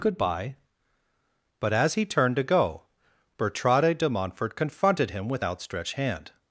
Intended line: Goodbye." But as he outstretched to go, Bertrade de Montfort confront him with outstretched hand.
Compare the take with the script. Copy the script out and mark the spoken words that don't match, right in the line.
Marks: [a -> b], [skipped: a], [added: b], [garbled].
Goodbye." But as he [outstretched -> turned] to go, Bertrade de Montfort [confront -> confronted] him with outstretched hand.